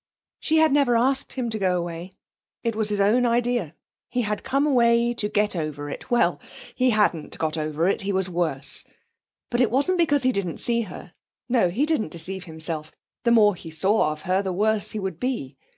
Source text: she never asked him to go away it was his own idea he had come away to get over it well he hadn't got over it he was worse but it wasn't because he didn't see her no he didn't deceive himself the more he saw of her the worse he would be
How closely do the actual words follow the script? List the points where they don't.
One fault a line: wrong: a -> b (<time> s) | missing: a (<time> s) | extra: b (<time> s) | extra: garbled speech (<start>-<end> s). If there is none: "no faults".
extra: had (0.6 s)